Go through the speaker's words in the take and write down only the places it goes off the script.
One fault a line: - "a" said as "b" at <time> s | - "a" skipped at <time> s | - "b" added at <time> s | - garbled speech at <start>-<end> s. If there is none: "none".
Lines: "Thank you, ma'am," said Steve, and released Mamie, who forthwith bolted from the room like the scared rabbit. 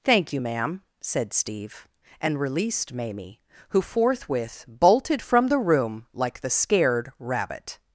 none